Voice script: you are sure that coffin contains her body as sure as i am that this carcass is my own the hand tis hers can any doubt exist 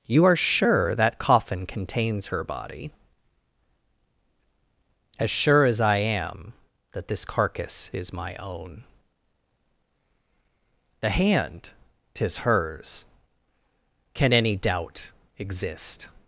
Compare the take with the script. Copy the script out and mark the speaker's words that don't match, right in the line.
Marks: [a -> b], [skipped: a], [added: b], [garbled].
you are sure that coffin contains her body as sure as i am that this carcass is my own the hand tis hers can any doubt exist